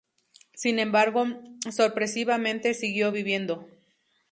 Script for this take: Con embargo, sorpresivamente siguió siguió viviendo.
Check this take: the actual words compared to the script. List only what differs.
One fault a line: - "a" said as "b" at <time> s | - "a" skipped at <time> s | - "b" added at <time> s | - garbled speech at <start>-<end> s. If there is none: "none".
- "Con" said as "Sin" at 0.6 s
- "siguió" skipped at 3.1 s